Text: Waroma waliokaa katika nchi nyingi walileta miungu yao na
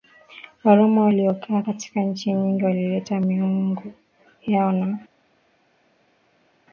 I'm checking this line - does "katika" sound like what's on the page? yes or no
yes